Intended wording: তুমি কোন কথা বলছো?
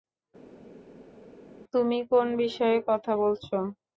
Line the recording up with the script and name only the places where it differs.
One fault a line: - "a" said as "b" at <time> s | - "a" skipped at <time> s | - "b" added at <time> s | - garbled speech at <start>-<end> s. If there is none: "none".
- "বিষয়ে" added at 2.4 s